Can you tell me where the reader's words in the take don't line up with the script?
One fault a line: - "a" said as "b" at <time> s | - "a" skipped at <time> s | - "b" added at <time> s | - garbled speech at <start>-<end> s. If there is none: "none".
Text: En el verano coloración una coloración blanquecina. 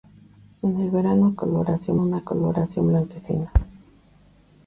none